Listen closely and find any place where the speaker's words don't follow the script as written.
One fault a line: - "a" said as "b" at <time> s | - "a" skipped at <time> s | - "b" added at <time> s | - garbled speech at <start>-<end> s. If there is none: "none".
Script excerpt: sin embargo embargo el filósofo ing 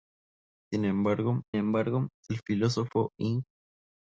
none